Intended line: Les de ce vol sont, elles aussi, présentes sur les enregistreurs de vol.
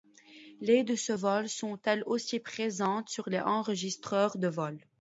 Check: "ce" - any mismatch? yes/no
no